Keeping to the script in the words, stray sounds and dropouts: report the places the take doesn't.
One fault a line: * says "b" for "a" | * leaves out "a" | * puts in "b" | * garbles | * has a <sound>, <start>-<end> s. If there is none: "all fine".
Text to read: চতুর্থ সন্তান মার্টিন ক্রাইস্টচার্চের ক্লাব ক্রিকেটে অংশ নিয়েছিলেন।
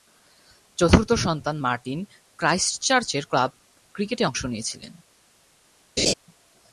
* has a laugh, 6.0-6.1 s